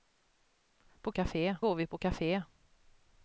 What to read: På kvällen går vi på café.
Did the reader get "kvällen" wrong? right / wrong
wrong